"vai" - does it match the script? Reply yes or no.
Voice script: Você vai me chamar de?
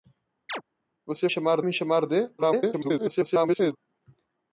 no